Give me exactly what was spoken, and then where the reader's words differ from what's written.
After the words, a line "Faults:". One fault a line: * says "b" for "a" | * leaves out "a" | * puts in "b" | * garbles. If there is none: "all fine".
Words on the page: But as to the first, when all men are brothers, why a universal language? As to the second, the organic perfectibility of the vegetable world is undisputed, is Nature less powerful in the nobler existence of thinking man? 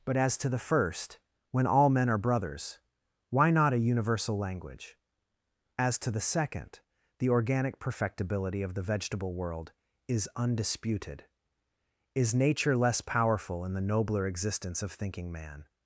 But as to the first, when all men are brothers, why not a universal language? As to the second, the organic perfectibility of the vegetable world is undisputed, is Nature less powerful in the nobler existence of thinking man?
Faults:
* puts in "not"